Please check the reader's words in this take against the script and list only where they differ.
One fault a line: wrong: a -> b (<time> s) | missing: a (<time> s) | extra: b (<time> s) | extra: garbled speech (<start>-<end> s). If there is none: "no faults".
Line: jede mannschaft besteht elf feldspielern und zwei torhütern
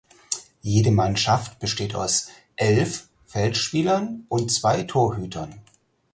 extra: aus (1.9 s)